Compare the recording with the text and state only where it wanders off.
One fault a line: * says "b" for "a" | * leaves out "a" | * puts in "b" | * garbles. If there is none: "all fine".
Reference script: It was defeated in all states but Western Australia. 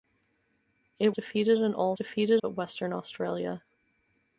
* leaves out "was"
* says "defeated" for "states"